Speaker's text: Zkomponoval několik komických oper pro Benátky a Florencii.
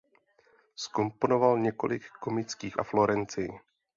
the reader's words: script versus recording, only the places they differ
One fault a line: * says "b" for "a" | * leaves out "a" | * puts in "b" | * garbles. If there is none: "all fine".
* leaves out "oper pro Benátky"